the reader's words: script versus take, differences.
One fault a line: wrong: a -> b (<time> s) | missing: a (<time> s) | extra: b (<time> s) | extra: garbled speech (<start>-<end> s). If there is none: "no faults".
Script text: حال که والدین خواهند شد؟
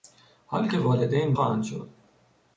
no faults